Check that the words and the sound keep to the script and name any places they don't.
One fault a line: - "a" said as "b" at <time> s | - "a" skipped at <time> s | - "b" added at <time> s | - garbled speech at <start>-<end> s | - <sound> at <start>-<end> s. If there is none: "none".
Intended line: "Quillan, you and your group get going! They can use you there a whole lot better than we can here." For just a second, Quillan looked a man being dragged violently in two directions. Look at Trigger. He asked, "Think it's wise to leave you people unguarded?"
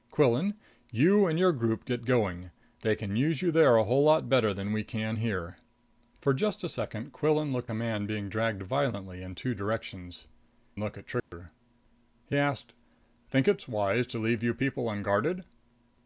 - dropout at 11.2-11.3 s